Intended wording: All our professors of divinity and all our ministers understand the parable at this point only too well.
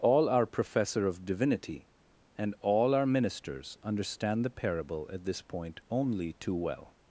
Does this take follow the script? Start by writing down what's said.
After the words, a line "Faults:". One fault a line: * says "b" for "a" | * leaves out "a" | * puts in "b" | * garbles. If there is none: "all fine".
All our professor of divinity and all our ministers understand the parable at this point only too well.
Faults:
* says "professor" for "professors"